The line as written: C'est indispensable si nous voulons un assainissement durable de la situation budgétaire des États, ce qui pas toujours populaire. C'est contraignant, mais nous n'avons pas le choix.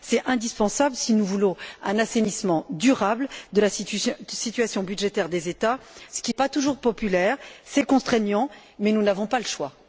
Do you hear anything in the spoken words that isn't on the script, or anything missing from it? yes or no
no